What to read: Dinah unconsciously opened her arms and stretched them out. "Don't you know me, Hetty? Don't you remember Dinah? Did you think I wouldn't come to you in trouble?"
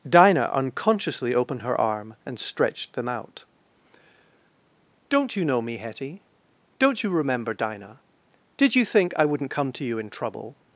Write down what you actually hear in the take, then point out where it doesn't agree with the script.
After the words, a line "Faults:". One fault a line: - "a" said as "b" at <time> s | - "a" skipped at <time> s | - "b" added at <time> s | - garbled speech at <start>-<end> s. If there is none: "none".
Dinah unconsciously opened her arm and stretched them out. "Don't you know me, Hetty? Don't you remember Dinah? Did you think I wouldn't come to you in trouble?"
Faults:
- "arms" said as "arm" at 1.8 s